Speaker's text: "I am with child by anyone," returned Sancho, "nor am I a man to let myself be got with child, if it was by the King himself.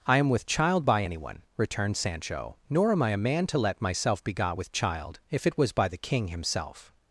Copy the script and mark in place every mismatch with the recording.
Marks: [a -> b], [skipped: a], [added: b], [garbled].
"I am with child by anyone," returned Sancho, "nor am I a man to let myself be got with child, if it was by the King himself.